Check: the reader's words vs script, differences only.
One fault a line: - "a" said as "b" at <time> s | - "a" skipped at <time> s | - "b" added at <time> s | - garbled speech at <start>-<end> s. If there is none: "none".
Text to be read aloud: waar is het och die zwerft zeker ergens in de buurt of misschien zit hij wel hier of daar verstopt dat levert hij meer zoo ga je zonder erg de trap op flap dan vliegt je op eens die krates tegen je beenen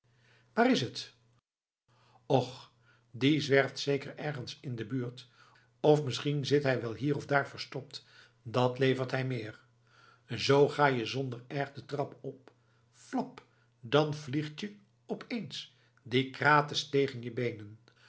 none